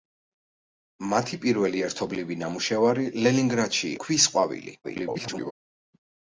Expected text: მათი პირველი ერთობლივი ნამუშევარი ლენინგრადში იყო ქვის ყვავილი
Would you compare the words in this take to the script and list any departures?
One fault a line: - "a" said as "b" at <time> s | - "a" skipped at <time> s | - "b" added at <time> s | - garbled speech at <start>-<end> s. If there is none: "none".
- "იყო" skipped at 3.9 s
- garbled speech at 4.8-5.5 s